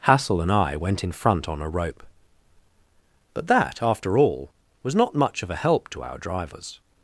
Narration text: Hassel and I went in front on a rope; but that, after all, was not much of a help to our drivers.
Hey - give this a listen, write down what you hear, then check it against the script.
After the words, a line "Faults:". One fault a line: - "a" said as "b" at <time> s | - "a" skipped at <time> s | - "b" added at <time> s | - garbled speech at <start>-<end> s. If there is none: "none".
Hassel and I went in front on a rope; but that, after all, was not much of a help to our drivers.
Faults:
none